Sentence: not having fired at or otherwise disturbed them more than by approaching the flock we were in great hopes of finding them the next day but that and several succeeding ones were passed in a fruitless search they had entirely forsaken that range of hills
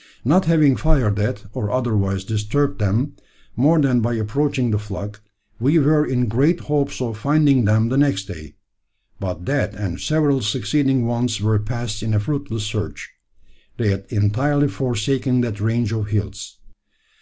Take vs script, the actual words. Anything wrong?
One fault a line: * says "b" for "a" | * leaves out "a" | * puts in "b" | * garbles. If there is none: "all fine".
all fine